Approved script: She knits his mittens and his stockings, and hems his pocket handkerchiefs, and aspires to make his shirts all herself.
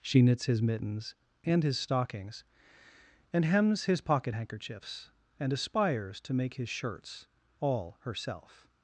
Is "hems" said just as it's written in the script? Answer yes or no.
yes